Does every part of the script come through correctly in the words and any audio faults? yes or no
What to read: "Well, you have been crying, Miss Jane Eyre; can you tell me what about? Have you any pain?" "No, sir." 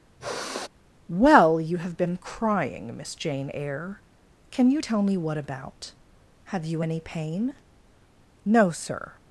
no